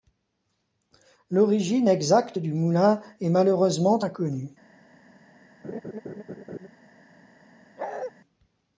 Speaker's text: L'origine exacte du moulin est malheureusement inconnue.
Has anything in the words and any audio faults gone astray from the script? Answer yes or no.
yes